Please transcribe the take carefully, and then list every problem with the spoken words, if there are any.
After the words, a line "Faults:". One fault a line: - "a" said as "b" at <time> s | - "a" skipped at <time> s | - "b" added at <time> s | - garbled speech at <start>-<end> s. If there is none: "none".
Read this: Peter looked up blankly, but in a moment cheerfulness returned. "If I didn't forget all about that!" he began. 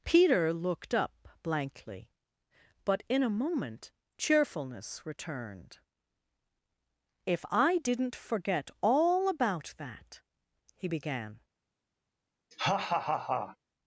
Peter looked up blankly, but in a moment cheerfulness returned. "If I didn't forget all about that!" he began.
Faults:
none